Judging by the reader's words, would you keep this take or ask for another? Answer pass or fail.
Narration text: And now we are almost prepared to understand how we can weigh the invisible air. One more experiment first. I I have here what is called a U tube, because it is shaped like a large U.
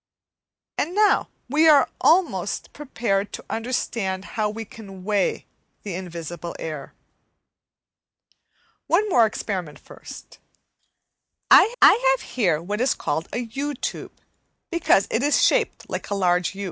pass